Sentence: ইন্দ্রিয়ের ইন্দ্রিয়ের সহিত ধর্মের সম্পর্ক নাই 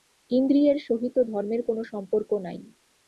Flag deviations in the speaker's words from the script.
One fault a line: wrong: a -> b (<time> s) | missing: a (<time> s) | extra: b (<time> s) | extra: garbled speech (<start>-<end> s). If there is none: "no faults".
missing: ইন্দ্রিয়ের (0.8 s)
extra: কোন (1.7 s)